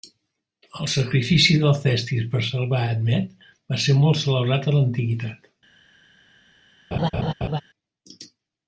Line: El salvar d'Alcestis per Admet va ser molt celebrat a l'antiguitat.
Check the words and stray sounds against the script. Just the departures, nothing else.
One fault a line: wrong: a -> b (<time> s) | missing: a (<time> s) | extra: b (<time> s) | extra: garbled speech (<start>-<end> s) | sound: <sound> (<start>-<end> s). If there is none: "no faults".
wrong: salvar -> sacrifici (0.9 s)
extra: salvar (2.5 s)
sound: laugh (6.9-7.6 s)